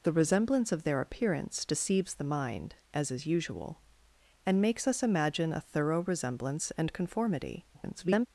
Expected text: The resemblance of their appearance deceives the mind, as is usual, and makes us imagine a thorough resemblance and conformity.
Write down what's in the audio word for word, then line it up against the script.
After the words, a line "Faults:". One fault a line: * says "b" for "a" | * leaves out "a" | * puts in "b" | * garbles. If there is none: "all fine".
The resemblance of their appearance deceives the mind, as is usual, and makes us imagine a thorough resemblance and conformity. [garbled]
Faults:
* garbles